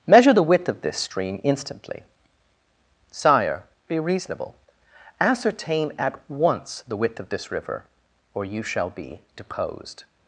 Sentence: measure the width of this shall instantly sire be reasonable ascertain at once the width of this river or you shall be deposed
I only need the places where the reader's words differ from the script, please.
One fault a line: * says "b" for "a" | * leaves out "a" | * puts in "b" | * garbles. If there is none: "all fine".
* says "stream" for "shall"